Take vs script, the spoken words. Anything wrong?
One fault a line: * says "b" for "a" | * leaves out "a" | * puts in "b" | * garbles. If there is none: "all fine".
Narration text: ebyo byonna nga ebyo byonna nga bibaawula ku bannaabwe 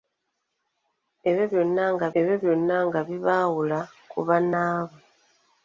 all fine